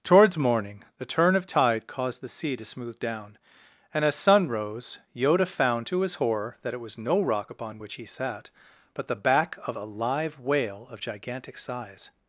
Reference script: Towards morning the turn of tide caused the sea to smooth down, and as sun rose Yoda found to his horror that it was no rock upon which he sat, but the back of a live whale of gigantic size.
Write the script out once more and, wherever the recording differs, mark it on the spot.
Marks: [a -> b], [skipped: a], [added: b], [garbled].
Towards morning the turn of tide caused the sea to smooth down, and as sun rose Yoda found to his horror that it was no rock upon which he sat, but the back of a live whale of gigantic size.